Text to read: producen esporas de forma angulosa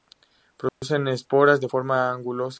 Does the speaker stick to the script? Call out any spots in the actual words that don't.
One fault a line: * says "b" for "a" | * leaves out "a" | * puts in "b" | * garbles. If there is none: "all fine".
all fine